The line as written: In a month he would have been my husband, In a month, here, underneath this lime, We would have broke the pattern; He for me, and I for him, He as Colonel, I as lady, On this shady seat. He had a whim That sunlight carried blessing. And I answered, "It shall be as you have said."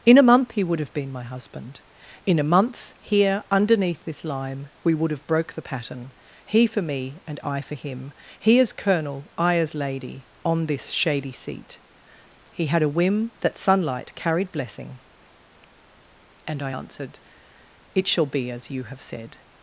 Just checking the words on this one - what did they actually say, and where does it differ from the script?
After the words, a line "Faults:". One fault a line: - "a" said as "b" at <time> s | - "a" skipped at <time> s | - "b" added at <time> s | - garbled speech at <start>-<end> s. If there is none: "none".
In a month he would have been my husband, In a month, here, underneath this lime, We would have broke the pattern; He for me, and I for him, He as Colonel, I as lady, On this shady seat. He had a whim That sunlight carried blessing. And I answered, "It shall be as you have said."
Faults:
none